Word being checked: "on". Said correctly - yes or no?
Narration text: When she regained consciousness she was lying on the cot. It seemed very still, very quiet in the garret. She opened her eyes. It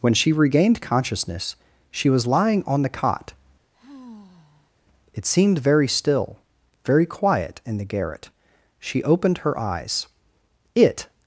yes